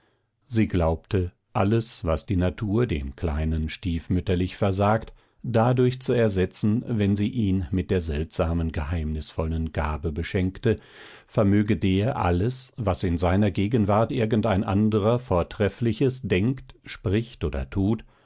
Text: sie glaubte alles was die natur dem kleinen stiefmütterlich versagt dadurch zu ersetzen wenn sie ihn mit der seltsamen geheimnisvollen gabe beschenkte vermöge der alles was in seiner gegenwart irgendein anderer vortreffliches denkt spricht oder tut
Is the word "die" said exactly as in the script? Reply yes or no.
yes